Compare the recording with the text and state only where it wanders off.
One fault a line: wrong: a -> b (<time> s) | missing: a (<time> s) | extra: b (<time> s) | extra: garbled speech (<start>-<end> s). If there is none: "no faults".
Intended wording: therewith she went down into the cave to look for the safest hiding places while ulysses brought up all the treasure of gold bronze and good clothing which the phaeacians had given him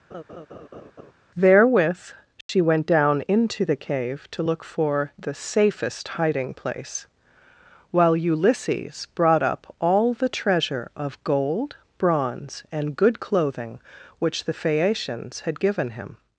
wrong: places -> place (6.5 s)